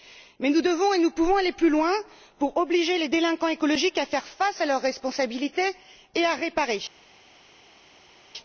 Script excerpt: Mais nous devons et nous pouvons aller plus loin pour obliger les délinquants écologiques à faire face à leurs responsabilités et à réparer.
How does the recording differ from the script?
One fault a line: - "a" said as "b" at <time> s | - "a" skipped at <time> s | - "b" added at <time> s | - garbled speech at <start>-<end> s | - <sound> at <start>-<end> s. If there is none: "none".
none